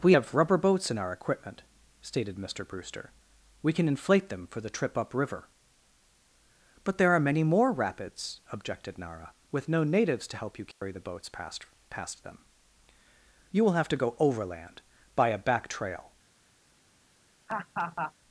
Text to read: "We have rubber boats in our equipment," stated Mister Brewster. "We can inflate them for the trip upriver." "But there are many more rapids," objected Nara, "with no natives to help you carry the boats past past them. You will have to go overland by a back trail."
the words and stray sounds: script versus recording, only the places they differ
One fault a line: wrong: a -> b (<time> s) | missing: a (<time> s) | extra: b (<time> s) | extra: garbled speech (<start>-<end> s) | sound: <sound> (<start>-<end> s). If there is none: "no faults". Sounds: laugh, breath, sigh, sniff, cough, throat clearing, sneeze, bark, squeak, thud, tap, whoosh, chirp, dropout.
sound: dropout (10.7-10.8 s)
sound: laugh (17.5-18.1 s)